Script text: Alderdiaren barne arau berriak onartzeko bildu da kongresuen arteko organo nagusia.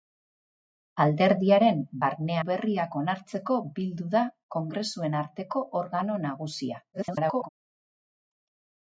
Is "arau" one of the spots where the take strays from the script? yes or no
yes